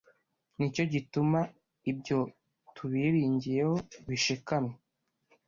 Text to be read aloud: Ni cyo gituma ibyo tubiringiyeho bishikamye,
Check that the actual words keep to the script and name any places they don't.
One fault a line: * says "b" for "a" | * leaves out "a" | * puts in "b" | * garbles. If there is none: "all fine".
all fine